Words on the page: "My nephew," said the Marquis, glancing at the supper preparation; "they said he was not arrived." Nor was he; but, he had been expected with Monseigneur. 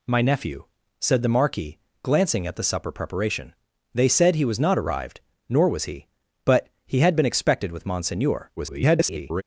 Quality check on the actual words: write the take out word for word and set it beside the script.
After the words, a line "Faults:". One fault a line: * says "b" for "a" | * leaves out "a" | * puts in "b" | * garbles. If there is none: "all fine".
"My nephew," said the Marquis, glancing at the supper preparation; "they said he was not arrived." Nor was he; but, he had been expected with Monseigneur. [garbled]
Faults:
* garbles